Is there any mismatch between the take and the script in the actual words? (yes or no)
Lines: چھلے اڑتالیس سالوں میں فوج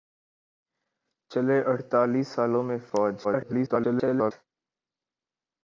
yes